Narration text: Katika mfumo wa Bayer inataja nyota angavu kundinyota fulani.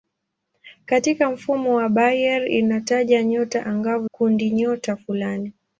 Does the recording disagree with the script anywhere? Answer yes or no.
no